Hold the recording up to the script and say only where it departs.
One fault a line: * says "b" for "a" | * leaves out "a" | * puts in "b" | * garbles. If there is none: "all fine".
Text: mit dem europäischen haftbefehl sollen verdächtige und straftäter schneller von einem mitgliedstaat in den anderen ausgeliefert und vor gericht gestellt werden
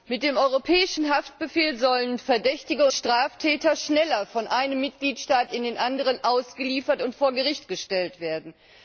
* leaves out "und"